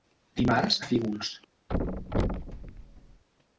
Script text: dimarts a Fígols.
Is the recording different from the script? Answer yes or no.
no